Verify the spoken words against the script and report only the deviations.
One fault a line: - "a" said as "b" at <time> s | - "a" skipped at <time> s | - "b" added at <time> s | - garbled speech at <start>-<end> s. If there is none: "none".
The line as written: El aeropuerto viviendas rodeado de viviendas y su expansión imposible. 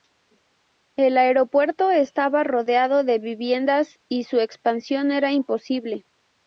- "viviendas" said as "estaba" at 1.9 s
- "era" added at 5.1 s